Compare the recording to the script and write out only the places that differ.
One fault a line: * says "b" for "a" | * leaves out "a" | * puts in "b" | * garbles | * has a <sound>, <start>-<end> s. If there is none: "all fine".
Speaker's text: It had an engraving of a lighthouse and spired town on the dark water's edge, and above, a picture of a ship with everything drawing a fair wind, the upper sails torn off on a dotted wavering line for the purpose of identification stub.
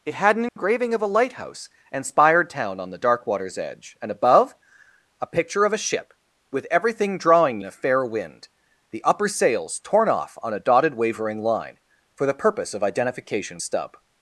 * has a dropout, 0.5-0.6 s